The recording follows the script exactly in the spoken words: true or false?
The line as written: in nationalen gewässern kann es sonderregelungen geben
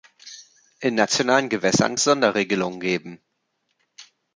false